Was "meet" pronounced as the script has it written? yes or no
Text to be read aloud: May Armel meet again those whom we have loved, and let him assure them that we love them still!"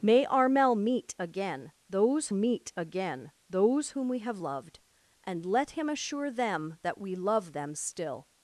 yes